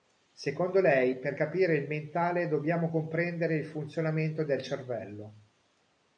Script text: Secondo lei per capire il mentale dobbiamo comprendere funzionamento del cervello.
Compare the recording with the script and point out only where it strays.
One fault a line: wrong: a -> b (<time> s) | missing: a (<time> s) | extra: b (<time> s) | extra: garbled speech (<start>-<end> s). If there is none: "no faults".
extra: il (3.5 s)